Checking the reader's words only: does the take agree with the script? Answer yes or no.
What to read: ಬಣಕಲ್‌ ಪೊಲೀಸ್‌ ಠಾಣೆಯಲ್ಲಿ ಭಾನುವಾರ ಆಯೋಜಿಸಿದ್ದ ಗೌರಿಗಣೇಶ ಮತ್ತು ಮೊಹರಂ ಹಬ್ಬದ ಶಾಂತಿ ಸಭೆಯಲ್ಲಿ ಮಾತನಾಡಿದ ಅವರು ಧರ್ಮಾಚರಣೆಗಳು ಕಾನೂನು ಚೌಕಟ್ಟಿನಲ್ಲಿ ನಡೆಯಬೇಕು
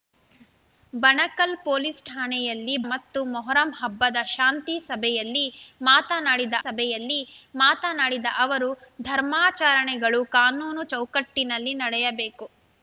no